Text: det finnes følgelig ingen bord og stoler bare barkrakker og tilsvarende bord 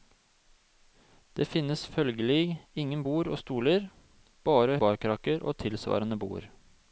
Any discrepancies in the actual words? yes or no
no